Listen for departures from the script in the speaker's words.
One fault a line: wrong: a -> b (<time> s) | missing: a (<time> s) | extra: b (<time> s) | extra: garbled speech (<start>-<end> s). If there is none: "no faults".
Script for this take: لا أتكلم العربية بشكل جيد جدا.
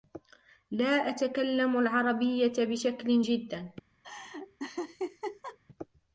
missing: جيد (3.2 s)